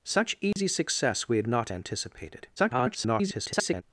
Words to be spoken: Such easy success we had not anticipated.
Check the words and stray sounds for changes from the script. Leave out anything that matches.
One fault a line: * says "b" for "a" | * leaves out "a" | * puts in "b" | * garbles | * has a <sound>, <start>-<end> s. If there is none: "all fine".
* has a dropout, 0.5-0.6 s
* garbles